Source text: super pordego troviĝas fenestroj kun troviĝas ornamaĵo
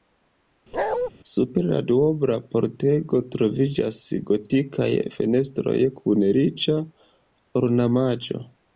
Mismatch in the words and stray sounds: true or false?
true